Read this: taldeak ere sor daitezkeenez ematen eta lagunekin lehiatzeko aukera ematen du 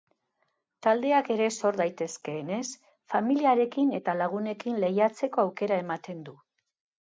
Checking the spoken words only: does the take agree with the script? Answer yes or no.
no